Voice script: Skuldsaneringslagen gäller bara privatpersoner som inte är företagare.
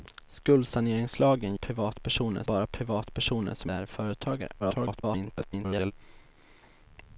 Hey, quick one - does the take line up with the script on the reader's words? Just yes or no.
no